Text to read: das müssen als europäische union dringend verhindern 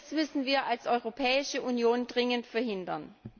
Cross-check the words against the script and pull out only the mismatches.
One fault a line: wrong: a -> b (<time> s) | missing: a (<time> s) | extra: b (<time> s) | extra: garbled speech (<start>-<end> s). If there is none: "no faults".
extra: wir (0.5 s)